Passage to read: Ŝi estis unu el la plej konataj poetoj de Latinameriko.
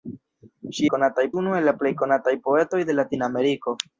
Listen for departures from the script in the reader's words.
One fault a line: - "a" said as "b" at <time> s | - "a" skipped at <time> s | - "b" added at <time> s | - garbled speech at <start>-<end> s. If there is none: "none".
- "estis" said as "konataj" at 0.9 s